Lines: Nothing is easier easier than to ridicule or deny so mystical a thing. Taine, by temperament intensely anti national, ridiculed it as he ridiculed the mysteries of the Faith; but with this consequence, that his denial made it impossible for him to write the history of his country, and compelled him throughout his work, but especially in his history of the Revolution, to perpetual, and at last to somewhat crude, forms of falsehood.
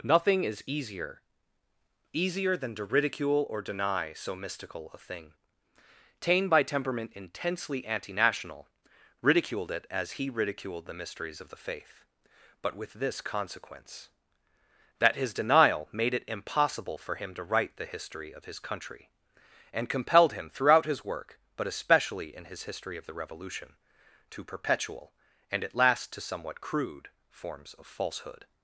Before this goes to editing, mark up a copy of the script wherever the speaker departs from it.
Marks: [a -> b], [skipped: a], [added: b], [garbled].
Nothing is easier easier than to ridicule or deny so mystical a thing. Taine, by temperament intensely anti national, ridiculed it as he ridiculed the mysteries of the Faith; but with this consequence, that his denial made it impossible for him to write the history of his country, and compelled him throughout his work, but especially in his history of the Revolution, to perpetual, and at last to somewhat crude, forms of falsehood.